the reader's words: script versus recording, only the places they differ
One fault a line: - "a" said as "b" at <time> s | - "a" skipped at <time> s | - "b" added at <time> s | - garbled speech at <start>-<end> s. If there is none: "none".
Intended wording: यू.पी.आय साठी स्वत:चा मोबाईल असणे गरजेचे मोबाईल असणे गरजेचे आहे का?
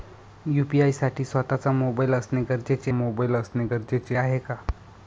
none